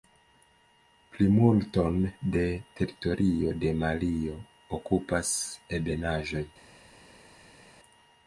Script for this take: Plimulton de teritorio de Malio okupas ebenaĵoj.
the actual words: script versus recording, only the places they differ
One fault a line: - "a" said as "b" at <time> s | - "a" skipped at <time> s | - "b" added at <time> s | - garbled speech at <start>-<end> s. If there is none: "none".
none